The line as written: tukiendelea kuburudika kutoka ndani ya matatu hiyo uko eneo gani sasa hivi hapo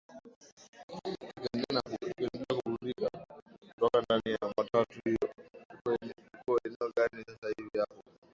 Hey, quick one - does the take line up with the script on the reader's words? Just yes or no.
yes